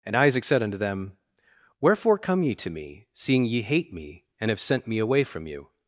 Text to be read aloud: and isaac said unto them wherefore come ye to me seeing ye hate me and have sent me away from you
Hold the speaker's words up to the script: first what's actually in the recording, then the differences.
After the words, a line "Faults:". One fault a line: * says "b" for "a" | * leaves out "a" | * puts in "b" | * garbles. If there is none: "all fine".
and isaac said unto them wherefore come ye to me seeing ye hate me and have sent me away from you
Faults:
all fine